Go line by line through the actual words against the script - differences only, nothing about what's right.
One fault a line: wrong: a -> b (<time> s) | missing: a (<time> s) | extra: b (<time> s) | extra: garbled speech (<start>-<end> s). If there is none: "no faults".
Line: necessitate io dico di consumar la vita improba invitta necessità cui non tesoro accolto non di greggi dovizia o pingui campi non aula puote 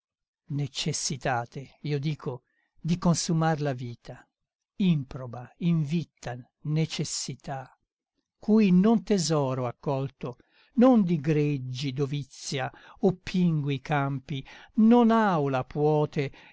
no faults